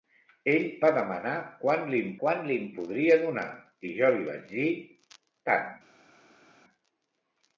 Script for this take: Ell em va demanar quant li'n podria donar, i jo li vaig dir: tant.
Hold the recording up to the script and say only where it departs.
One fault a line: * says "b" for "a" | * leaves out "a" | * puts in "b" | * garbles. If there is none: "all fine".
* leaves out "em"
* puts in "quant li'n"